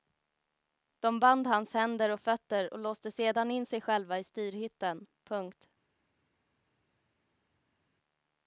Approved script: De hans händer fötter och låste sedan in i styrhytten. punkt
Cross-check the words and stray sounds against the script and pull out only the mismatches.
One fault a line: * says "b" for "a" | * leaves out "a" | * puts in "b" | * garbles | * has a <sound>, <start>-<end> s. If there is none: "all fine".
* puts in "band"
* puts in "och"
* puts in "sig själva"